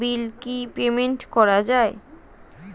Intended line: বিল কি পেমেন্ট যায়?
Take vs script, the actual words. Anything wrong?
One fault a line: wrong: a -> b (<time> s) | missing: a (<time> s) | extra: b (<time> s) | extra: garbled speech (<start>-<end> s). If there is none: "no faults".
extra: করা (1.3 s)